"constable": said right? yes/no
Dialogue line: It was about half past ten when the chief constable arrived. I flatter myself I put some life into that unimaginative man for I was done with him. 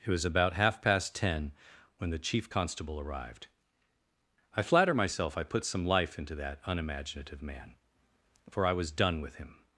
yes